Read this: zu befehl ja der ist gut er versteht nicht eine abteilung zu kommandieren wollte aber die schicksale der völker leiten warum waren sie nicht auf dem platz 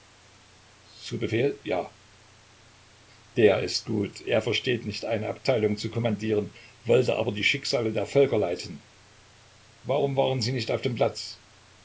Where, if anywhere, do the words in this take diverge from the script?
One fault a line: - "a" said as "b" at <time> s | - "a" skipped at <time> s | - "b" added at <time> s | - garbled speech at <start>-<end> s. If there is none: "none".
none